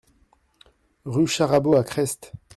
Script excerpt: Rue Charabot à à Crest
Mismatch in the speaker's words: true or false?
true